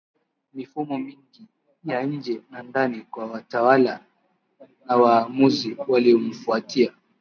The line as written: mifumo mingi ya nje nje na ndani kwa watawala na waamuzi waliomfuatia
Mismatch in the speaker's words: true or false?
true